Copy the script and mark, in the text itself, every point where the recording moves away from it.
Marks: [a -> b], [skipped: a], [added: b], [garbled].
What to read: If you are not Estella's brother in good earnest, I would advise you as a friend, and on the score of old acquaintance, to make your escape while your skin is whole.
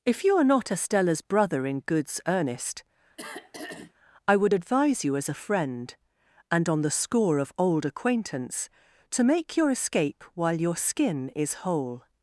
If you are not Estella's brother in [good -> goods] earnest, I would advise you as a friend, and on the score of old acquaintance, to make your escape while your skin is whole.